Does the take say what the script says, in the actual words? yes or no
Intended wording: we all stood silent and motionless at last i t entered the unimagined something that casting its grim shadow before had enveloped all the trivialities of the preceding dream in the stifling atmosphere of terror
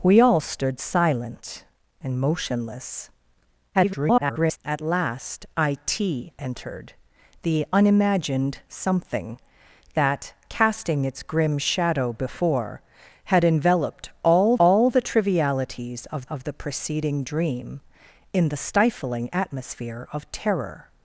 no